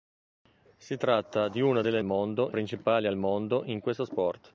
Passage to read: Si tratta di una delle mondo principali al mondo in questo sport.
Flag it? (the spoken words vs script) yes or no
no